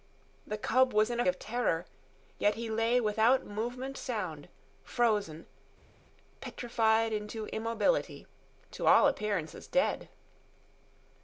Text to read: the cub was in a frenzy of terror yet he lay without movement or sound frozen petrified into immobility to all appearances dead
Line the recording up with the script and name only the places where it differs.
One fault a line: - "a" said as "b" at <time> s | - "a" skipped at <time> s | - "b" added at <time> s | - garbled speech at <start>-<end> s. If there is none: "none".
- "frenzy" skipped at 1.3 s
- "or" skipped at 4.0 s